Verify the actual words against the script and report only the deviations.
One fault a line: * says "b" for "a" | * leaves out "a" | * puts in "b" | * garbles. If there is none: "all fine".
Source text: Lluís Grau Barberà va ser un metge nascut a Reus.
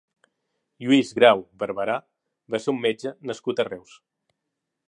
all fine